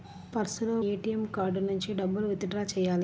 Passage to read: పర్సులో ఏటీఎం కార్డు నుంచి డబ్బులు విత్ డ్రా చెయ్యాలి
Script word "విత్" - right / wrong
right